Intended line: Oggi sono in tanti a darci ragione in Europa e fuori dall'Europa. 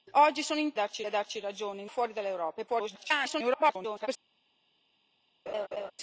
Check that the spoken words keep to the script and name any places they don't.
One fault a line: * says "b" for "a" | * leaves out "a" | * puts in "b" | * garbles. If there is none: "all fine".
* says "darci" for "tanti"
* leaves out "Europa"
* garbles